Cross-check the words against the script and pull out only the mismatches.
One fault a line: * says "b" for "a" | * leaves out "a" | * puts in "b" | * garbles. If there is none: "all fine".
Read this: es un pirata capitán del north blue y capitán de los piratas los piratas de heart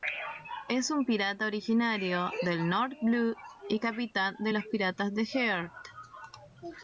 * says "originario" for "capitán"
* leaves out "los piratas"